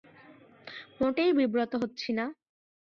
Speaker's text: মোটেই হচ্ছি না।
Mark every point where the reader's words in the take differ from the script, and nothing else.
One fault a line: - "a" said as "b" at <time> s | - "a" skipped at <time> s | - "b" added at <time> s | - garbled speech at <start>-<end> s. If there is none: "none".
- "বিব্রত" added at 1.4 s